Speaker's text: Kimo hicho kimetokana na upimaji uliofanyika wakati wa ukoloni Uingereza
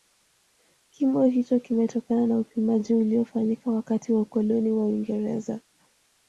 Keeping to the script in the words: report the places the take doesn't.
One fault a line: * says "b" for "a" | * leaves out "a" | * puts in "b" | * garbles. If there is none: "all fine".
* puts in "wa"